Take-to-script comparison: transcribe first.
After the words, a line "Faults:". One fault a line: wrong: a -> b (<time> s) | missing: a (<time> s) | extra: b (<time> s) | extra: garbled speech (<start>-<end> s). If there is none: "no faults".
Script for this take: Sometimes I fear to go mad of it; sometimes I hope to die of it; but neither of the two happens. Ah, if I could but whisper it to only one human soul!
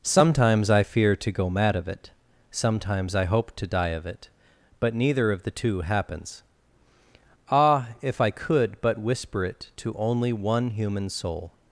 Sometimes I fear to go mad of it; sometimes I hope to die of it; but neither of the two happens. Ah, if I could but whisper it to only one human soul!
Faults:
no faults